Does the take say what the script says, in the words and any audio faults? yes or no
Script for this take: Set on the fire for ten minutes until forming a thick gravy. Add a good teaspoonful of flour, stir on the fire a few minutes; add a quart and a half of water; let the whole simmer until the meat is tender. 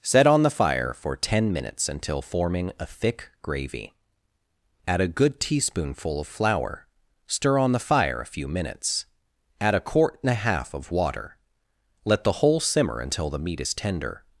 yes